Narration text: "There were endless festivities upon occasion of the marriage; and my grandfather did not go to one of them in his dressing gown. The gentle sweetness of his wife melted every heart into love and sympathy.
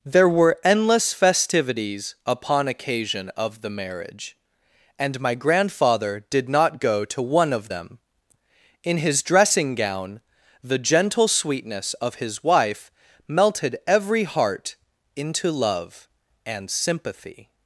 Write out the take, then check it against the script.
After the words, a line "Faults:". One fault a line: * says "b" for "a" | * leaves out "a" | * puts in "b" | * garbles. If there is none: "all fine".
"There were endless festivities upon occasion of the marriage; and my grandfather did not go to one of them in his dressing gown. The gentle sweetness of his wife melted every heart into love and sympathy.
Faults:
all fine